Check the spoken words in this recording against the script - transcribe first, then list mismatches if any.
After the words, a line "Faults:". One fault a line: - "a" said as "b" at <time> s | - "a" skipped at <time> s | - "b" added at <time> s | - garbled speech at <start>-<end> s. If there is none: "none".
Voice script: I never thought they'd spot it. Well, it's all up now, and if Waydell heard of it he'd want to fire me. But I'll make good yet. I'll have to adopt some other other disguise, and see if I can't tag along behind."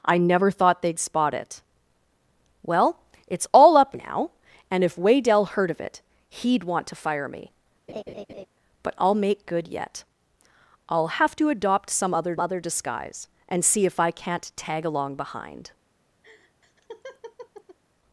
I never thought they'd spot it. Well, it's all up now, and if Waydell heard of it he'd want to fire me. But I'll make good yet. I'll have to adopt some other other disguise, and see if I can't tag along behind."
Faults:
none